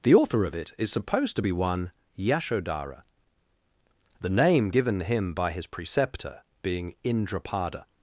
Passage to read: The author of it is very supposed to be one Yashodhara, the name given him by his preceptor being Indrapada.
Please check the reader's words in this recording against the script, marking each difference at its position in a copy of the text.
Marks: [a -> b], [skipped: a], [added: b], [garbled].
The author of it is [skipped: very] supposed to be one Yashodhara, the name given him by his preceptor being Indrapada.